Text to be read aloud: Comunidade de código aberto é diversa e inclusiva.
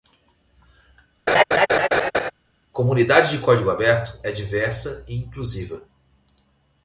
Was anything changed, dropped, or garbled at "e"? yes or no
no